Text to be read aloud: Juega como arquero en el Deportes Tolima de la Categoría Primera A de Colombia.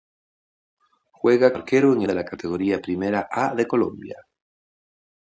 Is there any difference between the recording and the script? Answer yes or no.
yes